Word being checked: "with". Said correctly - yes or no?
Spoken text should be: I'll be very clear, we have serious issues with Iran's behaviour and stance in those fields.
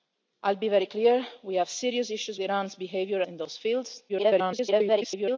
no